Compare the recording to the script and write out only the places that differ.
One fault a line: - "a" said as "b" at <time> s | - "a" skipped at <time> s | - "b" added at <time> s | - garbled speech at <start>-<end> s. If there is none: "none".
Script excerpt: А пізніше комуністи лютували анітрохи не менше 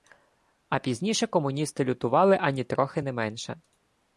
none